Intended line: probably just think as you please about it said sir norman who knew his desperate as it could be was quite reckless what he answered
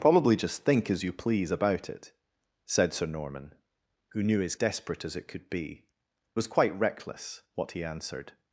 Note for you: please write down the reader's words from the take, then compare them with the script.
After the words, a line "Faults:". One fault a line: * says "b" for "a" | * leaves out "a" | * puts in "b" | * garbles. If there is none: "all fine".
probably just think as you please about it said sir norman who knew his desperate as it could be was quite reckless what he answered
Faults:
all fine